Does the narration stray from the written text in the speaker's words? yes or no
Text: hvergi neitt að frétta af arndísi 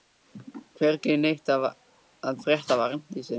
no